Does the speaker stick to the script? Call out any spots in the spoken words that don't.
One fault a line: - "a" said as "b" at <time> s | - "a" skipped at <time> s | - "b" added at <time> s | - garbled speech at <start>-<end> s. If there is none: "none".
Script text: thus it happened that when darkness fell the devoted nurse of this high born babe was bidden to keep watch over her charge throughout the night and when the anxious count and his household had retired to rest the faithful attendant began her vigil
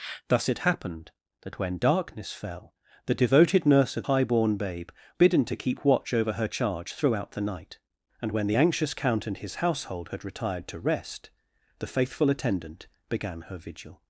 - "this" skipped at 4.0 s
- "was" skipped at 4.9 s